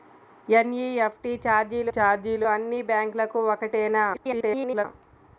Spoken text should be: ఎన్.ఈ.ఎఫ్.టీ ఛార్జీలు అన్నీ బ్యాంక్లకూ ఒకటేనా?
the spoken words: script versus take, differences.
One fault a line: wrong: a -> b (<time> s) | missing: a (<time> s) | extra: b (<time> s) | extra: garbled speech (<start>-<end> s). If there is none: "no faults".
extra: ఛార్జీలు (1.9 s)
extra: garbled speech (4.1-4.9 s)